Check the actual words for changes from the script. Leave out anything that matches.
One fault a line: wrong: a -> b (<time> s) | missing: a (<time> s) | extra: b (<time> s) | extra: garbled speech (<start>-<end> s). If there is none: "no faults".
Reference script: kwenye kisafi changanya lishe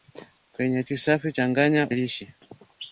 no faults